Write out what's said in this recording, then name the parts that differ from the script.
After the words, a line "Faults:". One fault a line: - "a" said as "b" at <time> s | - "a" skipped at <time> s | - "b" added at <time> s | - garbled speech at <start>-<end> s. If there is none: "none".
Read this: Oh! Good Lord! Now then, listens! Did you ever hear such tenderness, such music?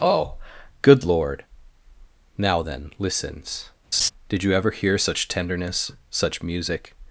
Oh! Good Lord! Now then, listens! Did you ever hear such tenderness, such music?
Faults:
none